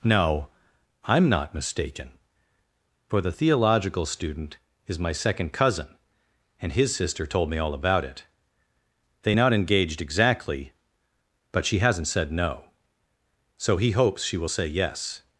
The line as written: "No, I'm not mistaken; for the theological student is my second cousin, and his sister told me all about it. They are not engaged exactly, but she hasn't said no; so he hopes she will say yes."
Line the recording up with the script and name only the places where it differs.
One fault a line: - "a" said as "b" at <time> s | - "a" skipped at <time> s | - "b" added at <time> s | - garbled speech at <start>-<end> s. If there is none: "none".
- "are" skipped at 9.4 s